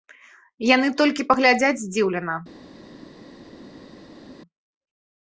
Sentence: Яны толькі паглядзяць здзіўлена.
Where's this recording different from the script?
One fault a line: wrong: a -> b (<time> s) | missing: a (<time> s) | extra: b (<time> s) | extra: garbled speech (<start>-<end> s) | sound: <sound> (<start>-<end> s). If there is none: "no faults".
no faults